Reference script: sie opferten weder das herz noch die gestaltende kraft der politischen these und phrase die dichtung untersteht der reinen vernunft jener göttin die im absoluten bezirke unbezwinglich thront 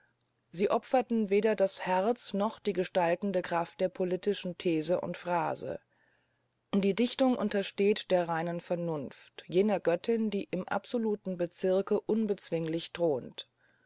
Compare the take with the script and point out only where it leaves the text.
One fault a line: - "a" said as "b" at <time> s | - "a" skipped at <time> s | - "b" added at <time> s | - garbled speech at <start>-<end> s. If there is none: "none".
none